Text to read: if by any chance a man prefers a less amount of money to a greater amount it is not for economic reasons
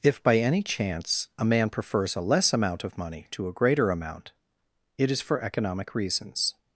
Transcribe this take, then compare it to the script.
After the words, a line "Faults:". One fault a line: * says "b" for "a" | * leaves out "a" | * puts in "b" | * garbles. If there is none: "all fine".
if by any chance a man prefers a less amount of money to a greater amount it is for economic reasons
Faults:
* leaves out "not"